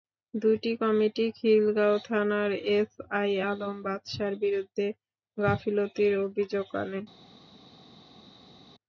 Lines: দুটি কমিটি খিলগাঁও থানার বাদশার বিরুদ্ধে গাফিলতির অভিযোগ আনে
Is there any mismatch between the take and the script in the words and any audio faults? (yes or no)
yes